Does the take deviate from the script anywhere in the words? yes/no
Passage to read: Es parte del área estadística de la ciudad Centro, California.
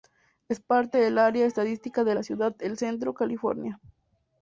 yes